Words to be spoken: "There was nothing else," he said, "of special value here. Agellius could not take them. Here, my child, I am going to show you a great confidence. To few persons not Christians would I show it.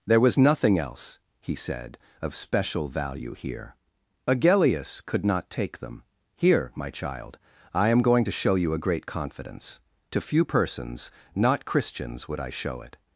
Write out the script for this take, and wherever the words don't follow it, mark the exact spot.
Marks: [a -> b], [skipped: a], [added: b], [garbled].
"There was nothing else," he said, "of special value here. Agellius could not take them. Here, my child, I am going to show you a great confidence. To few persons not Christians would I show it.